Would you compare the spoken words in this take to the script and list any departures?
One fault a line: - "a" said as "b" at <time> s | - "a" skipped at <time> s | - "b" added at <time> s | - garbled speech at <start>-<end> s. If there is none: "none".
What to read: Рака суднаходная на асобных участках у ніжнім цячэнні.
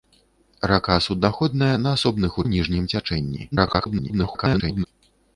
- "участках" skipped at 2.4 s
- garbled speech at 3.5-4.9 s